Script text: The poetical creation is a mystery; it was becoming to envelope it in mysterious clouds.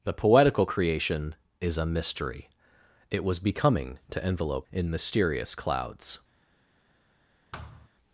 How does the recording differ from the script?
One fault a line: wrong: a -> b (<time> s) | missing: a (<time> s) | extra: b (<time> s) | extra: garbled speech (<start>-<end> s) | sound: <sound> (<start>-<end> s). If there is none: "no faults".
missing: it (4.7 s)
sound: thud (7.5-7.9 s)